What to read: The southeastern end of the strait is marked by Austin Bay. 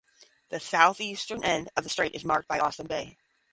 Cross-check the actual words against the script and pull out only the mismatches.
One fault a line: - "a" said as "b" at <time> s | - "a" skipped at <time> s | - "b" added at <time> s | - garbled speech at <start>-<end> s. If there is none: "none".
none